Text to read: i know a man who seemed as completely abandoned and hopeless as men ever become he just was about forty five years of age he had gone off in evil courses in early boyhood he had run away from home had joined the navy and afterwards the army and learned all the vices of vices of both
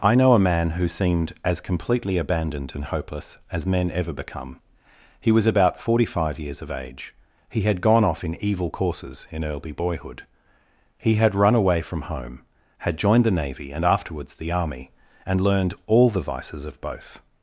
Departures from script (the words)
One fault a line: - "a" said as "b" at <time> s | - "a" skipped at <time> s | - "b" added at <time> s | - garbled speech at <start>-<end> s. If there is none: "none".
- "just" skipped at 5.3 s
- "vices of" skipped at 16.8 s